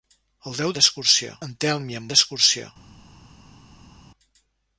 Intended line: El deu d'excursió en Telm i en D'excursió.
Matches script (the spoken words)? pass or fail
pass